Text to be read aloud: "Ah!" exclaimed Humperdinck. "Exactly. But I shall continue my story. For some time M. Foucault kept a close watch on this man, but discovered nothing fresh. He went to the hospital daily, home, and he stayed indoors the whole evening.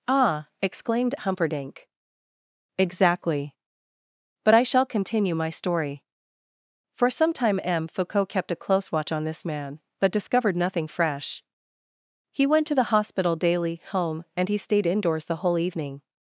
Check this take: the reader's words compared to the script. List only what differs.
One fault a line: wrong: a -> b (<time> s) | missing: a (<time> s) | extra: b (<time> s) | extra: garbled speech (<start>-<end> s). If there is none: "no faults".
no faults